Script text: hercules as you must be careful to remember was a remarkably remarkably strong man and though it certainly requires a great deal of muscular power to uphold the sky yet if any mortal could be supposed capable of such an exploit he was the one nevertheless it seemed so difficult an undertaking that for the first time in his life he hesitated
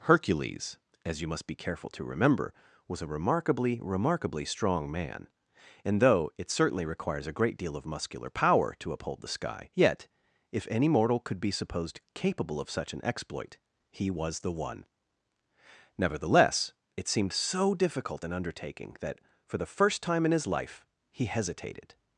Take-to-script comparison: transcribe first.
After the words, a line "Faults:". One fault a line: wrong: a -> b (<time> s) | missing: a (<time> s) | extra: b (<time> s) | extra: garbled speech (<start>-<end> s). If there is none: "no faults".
hercules as you must be careful to remember was a remarkably remarkably strong man and though it certainly requires a great deal of muscular power to uphold the sky yet if any mortal could be supposed capable of such an exploit he was the one nevertheless it seemed so difficult an undertaking that for the first time in his life he hesitated
Faults:
no faults